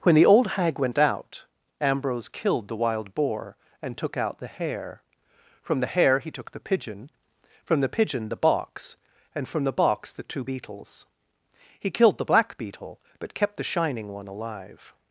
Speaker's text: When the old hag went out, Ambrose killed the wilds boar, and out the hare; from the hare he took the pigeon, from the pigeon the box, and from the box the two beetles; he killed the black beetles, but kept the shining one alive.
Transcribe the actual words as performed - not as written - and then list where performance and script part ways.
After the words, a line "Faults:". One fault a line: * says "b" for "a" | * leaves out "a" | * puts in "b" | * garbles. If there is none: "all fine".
When the old hag went out, Ambrose killed the wild boar, and took out the hare; from the hare he took the pigeon, from the pigeon the box, and from the box the two beetles; he killed the black beetle, but kept the shining one alive.
Faults:
* says "wild" for "wilds"
* puts in "took"
* says "beetle" for "beetles"